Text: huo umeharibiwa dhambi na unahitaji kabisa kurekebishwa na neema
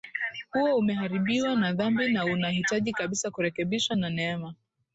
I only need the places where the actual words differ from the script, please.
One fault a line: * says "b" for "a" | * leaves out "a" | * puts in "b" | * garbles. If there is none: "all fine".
* puts in "na"